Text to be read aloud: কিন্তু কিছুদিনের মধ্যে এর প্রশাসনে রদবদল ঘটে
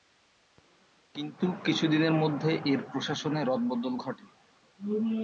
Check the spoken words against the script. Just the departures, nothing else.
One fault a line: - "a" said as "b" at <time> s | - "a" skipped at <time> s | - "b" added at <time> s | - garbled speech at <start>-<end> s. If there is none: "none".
none